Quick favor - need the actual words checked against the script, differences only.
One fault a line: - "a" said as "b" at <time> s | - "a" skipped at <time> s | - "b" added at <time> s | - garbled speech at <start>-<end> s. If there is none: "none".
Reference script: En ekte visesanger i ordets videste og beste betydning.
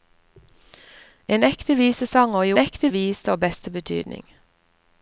- "ordets" said as "ekte" at 2.6 s